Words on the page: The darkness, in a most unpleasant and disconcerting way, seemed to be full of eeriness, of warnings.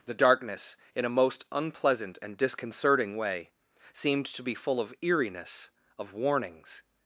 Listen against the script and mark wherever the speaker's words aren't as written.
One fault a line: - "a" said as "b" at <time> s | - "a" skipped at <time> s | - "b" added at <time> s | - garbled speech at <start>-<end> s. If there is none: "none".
none